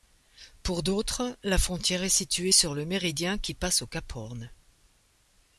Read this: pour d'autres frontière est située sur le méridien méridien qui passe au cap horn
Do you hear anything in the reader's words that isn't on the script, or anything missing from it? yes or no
yes